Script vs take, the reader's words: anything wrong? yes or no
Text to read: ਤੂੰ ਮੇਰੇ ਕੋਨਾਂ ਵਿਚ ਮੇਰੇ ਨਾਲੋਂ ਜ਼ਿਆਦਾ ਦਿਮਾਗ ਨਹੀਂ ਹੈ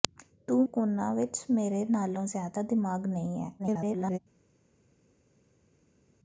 yes